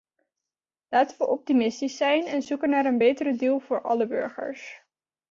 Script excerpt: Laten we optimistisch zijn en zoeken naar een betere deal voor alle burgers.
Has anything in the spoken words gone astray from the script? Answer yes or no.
no